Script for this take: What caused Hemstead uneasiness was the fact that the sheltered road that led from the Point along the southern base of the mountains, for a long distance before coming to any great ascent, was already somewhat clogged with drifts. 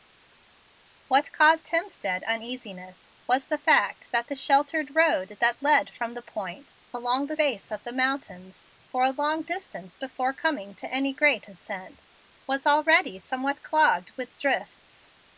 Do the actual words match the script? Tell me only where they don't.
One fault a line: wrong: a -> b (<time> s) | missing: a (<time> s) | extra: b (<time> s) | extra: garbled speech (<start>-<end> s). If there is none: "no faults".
missing: southern (7.4 s)